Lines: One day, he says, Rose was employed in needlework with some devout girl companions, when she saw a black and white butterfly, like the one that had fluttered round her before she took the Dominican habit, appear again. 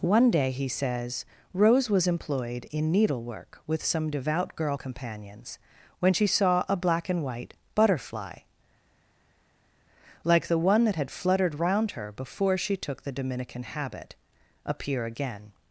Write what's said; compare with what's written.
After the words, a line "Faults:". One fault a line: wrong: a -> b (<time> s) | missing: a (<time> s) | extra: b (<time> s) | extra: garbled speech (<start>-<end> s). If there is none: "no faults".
One day, he says, Rose was employed in needlework with some devout girl companions, when she saw a black and white butterfly, like the one that had fluttered round her before she took the Dominican habit, appear again.
Faults:
no faults